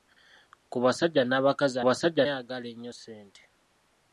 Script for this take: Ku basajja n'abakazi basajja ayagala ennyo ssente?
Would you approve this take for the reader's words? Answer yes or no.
yes